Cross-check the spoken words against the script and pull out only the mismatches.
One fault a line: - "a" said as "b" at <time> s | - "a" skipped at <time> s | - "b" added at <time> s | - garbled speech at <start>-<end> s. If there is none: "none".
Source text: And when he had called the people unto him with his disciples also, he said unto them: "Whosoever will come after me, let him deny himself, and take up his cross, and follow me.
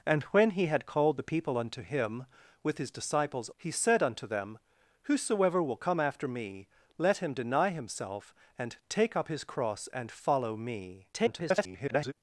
- "also" skipped at 3.5 s
- garbled speech at 11.1-12.1 s